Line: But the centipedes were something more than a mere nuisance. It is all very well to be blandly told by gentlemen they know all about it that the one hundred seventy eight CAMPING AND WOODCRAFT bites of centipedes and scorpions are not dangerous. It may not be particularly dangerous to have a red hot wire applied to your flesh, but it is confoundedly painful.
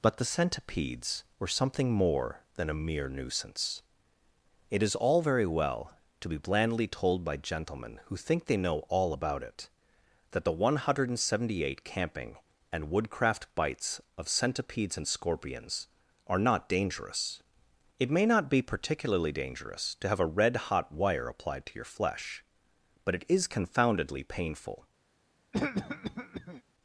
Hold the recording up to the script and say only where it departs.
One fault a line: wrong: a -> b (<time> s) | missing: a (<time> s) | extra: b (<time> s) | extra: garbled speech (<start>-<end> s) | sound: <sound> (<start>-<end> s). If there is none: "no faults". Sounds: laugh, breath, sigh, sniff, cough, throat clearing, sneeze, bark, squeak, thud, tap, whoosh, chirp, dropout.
extra: who think (8.0 s)
sound: cough (25.5-26.6 s)